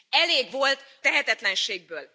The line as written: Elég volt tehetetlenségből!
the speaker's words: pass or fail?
pass